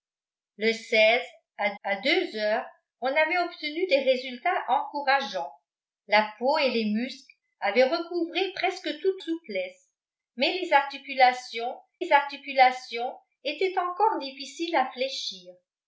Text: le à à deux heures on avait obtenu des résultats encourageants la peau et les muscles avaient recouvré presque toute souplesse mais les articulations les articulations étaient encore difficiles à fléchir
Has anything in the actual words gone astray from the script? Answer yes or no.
no